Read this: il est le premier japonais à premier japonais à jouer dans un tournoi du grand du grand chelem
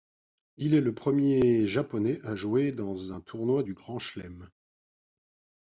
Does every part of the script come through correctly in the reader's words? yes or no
no